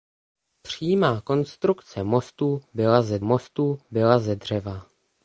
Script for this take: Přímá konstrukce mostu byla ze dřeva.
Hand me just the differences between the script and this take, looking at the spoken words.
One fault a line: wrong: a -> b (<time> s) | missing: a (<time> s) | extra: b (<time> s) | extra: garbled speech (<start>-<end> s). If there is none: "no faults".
extra: mostu byla ze (3.2 s)